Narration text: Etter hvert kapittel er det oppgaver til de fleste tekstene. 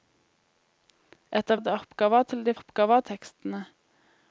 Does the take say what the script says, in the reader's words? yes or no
no